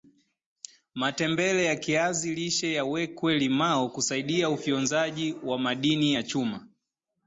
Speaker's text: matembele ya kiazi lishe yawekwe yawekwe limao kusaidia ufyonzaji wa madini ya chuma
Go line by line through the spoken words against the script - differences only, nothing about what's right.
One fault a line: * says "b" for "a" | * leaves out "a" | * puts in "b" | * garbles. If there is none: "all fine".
* leaves out "yawekwe"